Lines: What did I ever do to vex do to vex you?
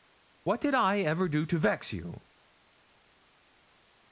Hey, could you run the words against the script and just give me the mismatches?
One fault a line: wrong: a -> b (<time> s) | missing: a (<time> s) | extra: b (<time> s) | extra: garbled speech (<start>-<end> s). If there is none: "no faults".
missing: do to vex (1.9 s)